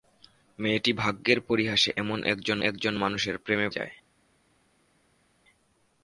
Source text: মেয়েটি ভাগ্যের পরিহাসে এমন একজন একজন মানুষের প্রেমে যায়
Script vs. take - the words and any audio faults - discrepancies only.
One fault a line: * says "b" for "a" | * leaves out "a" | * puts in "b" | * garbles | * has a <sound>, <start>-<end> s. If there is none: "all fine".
all fine